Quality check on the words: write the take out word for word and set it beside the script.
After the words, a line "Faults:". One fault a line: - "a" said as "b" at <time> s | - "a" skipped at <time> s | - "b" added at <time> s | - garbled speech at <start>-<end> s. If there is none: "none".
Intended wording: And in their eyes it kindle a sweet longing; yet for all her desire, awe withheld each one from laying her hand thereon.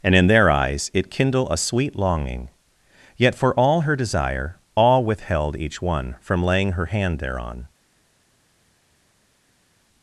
And in their eyes it kindle a sweet longing; yet for all her desire, awe withheld each one from laying her hand thereon.
Faults:
none